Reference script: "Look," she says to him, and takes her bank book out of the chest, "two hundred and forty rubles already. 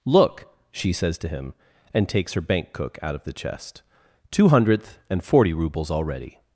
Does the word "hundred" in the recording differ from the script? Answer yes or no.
yes